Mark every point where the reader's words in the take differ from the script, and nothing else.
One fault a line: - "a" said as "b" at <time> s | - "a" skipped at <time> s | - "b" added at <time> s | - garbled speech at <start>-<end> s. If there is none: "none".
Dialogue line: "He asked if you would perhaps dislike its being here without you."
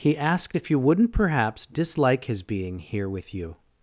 - "would" said as "wouldn't" at 0.8 s
- "its" said as "his" at 2.2 s
- "without" said as "with" at 3.1 s